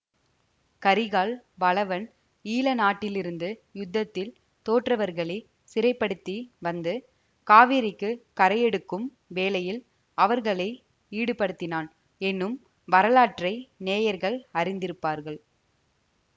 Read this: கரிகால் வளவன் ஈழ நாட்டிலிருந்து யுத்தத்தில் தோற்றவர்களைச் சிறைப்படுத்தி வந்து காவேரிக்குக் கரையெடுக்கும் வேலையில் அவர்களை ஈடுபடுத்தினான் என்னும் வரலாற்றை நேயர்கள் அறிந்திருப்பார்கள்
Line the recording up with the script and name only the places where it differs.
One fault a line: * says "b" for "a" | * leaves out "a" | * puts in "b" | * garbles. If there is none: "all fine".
all fine